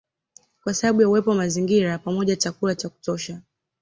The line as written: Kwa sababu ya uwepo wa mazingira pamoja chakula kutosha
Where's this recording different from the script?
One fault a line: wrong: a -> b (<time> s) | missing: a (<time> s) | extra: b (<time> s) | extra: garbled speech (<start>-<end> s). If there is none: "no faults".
extra: cha (2.8 s)